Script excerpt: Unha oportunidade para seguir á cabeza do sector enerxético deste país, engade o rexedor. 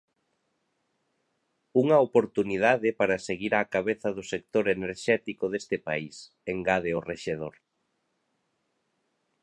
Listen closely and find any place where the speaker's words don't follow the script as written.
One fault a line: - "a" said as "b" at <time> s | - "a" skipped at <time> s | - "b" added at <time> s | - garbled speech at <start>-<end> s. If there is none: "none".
none